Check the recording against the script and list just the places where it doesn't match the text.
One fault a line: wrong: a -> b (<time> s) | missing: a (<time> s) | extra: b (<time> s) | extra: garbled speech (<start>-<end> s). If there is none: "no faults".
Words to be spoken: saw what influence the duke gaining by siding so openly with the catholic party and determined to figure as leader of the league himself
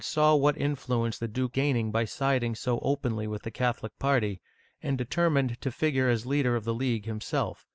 no faults